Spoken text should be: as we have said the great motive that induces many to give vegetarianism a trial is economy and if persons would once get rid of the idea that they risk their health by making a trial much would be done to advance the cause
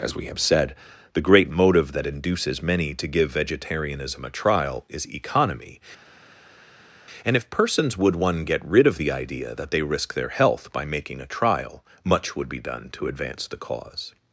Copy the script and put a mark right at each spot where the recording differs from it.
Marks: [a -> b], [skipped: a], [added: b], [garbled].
as we have said the great motive that induces many to give vegetarianism a trial is economy and if persons would [once -> one] get rid of the idea that they risk their health by making a trial much would be done to advance the cause